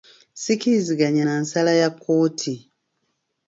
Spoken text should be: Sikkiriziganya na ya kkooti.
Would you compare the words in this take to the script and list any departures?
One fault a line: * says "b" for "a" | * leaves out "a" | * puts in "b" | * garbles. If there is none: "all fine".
* puts in "nsala"